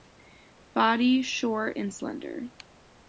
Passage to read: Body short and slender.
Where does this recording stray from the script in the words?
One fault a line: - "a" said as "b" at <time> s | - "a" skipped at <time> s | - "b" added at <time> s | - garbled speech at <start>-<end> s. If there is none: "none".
none